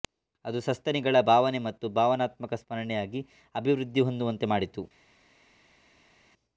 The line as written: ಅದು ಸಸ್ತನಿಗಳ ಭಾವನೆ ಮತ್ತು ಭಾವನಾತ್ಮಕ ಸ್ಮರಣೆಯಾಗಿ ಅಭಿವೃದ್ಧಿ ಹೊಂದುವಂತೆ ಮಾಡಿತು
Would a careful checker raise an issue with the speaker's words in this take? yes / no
no